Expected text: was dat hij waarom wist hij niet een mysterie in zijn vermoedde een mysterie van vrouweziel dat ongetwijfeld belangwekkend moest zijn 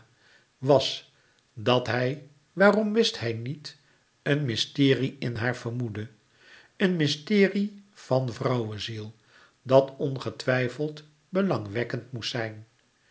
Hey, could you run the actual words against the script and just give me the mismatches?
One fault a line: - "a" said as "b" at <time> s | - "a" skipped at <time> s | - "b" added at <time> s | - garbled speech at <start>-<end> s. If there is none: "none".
- "zijn" said as "haar" at 5.3 s